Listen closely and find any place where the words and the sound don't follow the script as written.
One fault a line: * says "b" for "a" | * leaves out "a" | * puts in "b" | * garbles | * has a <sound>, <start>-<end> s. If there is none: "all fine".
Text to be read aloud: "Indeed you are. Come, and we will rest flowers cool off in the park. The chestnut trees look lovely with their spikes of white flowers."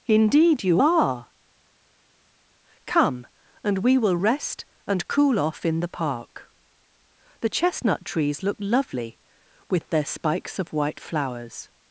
* says "and" for "flowers"